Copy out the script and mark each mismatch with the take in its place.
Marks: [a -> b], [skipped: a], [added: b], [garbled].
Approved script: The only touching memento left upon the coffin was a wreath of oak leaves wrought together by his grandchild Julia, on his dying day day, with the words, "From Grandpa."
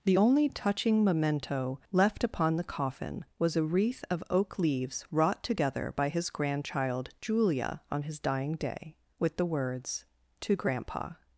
The only touching memento left upon the coffin was a wreath of oak leaves wrought together by his grandchild Julia, on his dying day [skipped: day,] with the words, ["From -> To] Grandpa."